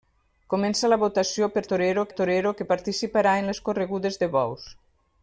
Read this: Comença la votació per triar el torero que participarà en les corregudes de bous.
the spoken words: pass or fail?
fail